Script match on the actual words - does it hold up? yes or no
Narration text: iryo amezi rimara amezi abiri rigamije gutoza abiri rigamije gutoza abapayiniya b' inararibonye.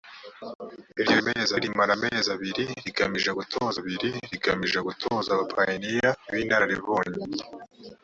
yes